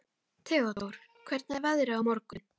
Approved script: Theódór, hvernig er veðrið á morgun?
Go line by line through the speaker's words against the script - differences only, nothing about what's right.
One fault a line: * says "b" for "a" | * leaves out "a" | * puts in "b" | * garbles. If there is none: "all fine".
all fine